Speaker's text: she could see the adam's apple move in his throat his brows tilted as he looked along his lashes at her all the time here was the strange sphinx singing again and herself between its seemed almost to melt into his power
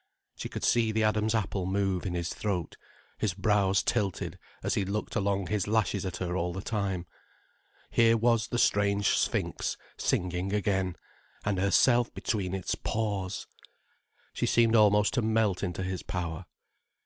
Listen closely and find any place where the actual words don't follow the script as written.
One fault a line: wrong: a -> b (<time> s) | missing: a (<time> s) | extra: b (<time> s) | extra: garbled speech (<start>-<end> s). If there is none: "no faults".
extra: paws she (12.7 s)